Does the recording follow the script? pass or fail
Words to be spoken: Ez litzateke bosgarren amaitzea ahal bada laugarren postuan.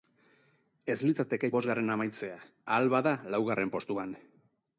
pass